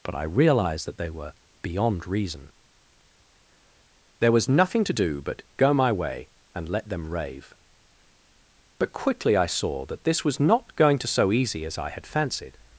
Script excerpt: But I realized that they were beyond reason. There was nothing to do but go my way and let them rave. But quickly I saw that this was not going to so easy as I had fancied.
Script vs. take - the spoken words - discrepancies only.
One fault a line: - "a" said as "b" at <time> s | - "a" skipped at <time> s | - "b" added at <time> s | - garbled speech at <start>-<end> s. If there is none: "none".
none